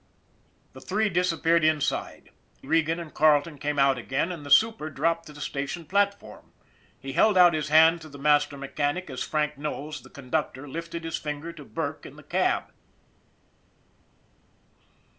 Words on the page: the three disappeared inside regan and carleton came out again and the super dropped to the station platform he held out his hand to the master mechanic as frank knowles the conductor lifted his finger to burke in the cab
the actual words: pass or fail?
pass